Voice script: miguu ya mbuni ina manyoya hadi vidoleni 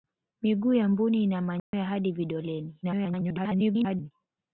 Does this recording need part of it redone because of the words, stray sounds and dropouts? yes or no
yes